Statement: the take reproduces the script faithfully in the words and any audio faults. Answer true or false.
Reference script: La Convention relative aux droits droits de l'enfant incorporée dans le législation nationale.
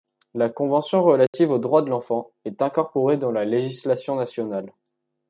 false